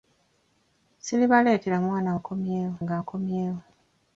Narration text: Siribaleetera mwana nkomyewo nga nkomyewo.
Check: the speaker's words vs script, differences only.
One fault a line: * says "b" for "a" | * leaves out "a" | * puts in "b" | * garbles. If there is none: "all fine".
all fine